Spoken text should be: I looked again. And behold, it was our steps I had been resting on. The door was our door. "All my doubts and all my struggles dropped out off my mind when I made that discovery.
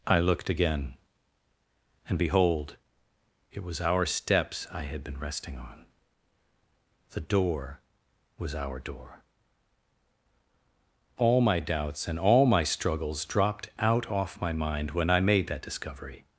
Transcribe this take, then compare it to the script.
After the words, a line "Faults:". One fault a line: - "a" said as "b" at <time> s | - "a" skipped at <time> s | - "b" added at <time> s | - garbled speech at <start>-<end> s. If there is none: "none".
I looked again. And behold, it was our steps I had been resting on. The door was our door. "All my doubts and all my struggles dropped out off my mind when I made that discovery.
Faults:
none